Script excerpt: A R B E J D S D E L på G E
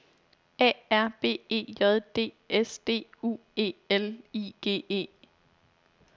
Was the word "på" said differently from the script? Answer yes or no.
yes